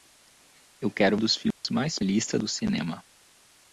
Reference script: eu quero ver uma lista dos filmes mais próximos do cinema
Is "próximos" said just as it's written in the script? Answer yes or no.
no